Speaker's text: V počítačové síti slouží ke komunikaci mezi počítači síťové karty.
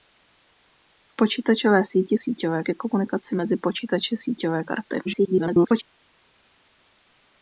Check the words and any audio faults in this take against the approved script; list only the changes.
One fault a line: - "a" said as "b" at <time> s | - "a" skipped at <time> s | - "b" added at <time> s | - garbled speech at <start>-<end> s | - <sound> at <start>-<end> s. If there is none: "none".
- "slouží" said as "síťové" at 2.2 s
- garbled speech at 5.0-5.8 s